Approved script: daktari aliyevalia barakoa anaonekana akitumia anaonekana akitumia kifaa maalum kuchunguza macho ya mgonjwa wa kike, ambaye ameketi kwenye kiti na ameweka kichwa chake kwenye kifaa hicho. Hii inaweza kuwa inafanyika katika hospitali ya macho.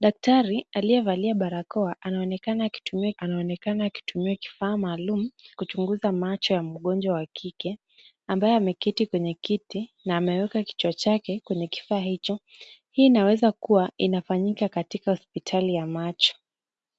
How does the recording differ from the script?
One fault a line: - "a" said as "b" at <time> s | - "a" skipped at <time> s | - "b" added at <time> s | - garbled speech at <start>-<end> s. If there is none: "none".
none